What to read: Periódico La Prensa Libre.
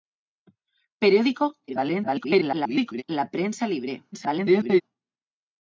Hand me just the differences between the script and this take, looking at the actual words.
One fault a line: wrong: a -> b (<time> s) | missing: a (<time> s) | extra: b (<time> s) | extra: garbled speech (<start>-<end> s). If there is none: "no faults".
extra: garbled speech (1.7-3.0 s)
extra: garbled speech (4.1-4.8 s)